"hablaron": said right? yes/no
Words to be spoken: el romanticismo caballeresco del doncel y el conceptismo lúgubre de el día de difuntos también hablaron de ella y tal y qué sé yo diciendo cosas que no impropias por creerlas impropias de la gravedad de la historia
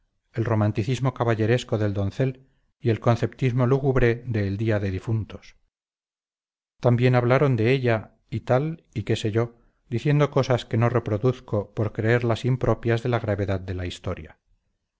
yes